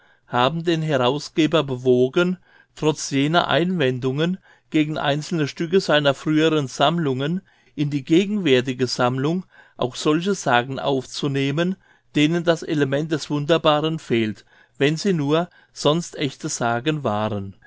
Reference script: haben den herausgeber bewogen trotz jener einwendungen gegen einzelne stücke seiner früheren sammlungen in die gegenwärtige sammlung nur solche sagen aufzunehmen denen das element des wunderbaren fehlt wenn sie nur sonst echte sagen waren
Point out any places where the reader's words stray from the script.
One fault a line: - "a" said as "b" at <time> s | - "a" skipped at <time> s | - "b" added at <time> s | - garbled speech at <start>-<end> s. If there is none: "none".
- "nur" said as "auch" at 9.8 s